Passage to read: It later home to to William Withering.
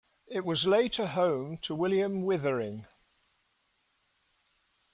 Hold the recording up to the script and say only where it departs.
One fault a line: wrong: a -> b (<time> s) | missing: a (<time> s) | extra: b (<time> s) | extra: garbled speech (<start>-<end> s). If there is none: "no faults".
extra: was (0.4 s)
missing: to (1.7 s)